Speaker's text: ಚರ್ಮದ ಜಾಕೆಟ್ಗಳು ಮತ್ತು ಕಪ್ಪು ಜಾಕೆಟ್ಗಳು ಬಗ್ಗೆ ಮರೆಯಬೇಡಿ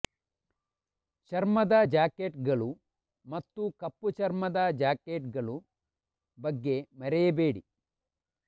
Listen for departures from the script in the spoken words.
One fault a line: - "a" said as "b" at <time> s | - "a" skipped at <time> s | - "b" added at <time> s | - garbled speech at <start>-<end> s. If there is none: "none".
- "ಚರ್ಮದ" added at 4.1 s